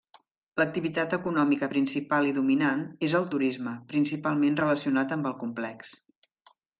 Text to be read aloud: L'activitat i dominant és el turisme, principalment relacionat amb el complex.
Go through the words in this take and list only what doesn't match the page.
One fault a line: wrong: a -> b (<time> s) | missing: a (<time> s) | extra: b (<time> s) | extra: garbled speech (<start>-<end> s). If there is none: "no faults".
extra: econòmica principal (1.2 s)